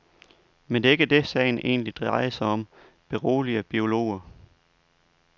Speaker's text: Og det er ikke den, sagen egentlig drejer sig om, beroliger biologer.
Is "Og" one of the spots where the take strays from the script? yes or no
yes